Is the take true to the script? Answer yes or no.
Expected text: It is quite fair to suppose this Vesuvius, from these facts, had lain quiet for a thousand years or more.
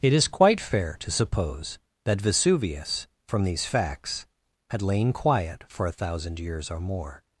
no